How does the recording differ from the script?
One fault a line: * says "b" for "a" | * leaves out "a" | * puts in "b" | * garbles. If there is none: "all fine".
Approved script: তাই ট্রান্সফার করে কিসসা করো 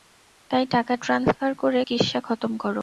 * puts in "টাকা"
* puts in "খতম"